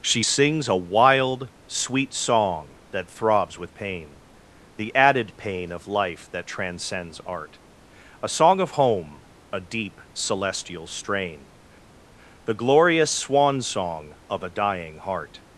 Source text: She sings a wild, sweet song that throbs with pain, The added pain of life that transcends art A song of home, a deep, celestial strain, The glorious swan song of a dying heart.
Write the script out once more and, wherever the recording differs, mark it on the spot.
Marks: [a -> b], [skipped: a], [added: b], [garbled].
She sings a wild, sweet song that throbs with pain, The added pain of life that transcends art A song of home, a deep, celestial strain, The glorious swan song of a dying heart.